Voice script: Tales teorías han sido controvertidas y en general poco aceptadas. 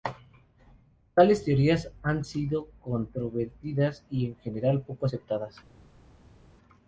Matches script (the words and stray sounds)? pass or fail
pass